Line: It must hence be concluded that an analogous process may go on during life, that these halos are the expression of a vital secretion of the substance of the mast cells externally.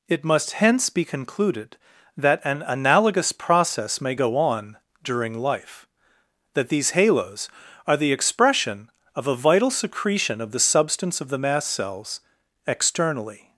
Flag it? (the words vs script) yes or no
no